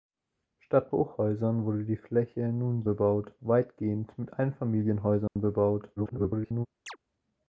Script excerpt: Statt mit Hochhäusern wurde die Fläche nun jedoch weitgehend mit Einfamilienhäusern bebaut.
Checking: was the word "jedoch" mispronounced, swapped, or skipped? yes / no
yes